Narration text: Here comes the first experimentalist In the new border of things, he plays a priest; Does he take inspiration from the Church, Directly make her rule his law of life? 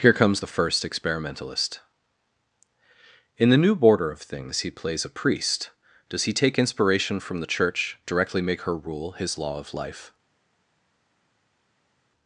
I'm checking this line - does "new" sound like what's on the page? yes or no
yes